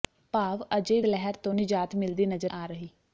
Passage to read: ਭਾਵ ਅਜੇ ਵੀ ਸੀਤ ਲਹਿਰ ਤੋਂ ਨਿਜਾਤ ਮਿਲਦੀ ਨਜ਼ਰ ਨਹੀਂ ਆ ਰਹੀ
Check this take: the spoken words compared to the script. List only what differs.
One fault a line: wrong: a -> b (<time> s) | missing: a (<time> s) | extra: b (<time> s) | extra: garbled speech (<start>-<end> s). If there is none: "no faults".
missing: ਵੀ ਸੀਤ (1.0 s)
missing: ਨਹੀਂ (2.5 s)